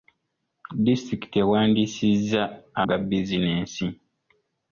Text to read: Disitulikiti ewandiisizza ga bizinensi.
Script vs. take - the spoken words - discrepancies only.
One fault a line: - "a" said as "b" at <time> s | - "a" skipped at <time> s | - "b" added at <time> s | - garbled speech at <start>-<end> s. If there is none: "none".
none